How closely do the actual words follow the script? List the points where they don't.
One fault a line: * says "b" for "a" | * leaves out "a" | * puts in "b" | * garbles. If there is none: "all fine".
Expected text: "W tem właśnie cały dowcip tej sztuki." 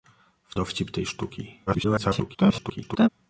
* leaves out "tem właśnie cały"
* garbles